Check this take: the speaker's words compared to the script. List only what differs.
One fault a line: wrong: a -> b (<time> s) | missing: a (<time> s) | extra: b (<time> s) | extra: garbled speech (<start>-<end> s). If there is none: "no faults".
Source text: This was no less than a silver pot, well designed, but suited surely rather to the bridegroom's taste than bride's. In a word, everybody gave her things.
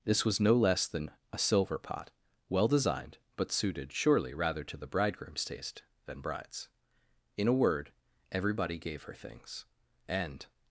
extra: And (10.1 s)